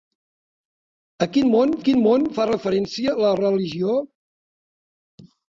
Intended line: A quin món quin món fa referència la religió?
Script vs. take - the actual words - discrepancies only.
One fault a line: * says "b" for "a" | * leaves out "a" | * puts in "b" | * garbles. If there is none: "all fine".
all fine